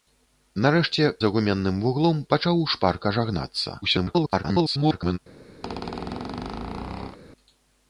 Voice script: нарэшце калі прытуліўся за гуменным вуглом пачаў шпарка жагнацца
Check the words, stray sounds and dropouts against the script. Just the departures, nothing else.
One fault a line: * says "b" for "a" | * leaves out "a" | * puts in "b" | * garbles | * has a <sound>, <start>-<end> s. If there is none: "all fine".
* leaves out "калі прытуліўся"
* garbles
* has a squeak, 5.6-7.2 s